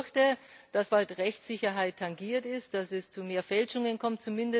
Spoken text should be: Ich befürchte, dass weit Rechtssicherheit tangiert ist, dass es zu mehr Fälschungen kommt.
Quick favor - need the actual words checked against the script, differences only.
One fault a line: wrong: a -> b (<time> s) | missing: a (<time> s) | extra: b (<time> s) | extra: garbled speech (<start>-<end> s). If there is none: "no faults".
no faults